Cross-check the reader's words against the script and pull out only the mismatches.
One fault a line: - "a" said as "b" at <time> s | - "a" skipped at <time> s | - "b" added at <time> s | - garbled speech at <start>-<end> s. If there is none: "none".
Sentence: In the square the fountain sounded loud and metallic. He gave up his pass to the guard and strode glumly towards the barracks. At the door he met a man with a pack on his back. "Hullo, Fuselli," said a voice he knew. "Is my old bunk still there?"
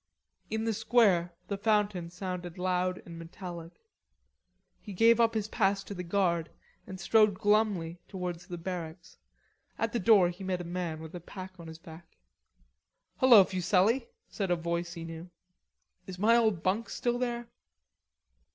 none